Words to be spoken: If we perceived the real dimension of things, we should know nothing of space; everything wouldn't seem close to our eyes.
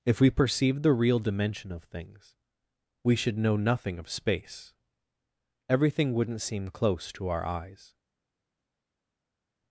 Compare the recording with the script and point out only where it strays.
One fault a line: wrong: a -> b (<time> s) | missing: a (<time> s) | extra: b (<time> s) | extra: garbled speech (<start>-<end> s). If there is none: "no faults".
no faults